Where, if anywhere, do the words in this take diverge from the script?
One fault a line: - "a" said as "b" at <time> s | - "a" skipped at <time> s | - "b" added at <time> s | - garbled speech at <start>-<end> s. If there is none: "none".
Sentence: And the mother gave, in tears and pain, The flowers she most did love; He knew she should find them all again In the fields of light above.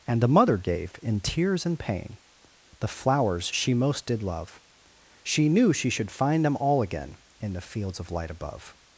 - "He" said as "She" at 5.2 s